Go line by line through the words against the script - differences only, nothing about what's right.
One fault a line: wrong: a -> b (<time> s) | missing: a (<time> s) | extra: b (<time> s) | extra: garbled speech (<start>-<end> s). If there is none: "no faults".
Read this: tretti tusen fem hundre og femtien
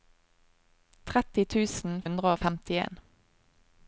missing: fem (2.0 s)